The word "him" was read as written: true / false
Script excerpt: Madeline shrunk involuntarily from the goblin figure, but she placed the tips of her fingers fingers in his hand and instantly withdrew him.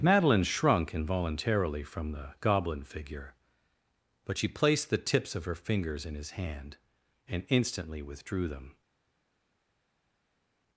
false